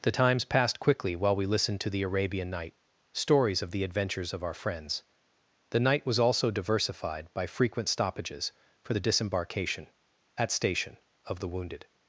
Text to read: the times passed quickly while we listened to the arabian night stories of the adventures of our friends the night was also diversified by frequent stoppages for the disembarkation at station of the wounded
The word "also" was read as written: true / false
true